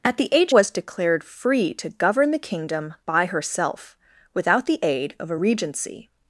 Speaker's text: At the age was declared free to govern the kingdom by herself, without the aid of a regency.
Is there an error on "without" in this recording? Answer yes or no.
no